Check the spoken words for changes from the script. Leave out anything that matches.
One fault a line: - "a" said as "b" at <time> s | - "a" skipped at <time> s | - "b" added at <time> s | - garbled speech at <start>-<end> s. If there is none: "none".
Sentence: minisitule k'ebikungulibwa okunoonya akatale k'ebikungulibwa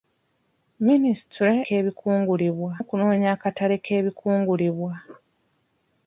none